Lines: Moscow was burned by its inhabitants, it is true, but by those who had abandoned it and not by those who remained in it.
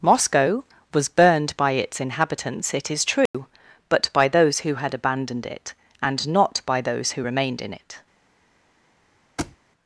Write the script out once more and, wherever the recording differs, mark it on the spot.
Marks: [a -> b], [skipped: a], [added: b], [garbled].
Moscow was burned by its inhabitants, it is true, but by those who had abandoned it and not by those who remained in it.